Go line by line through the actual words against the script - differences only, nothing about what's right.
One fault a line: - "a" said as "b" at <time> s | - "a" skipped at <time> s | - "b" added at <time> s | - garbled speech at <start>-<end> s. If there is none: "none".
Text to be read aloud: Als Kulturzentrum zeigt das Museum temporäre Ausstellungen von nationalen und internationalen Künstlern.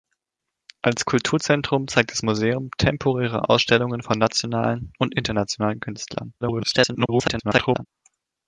- garbled speech at 6.4-7.9 s